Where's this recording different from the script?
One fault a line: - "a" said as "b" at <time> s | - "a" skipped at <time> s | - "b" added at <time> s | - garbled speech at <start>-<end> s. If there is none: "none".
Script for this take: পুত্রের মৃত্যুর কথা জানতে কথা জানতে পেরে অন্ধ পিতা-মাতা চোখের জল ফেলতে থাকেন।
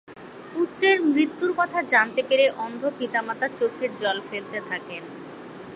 - "কথা জানতে" skipped at 2.2 s